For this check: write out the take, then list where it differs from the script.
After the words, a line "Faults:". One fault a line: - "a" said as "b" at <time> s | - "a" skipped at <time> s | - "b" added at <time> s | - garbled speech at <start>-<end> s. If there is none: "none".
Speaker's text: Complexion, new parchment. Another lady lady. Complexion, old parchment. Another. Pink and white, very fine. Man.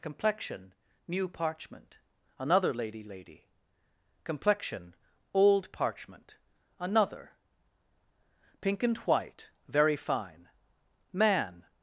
Complexion, new parchment. Another lady lady. Complexion, old parchment. Another. Pink and white, very fine. Man.
Faults:
none